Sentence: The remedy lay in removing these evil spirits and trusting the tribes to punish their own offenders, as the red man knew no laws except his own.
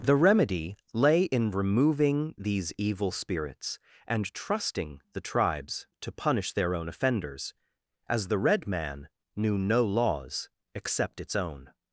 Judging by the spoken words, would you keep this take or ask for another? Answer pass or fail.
fail